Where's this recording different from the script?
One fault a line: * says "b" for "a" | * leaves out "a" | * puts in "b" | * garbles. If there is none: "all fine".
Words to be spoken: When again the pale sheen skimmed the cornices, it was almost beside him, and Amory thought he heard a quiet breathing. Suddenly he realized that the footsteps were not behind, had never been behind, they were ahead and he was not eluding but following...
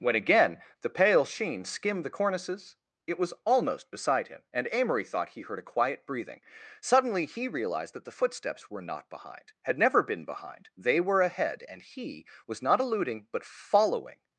all fine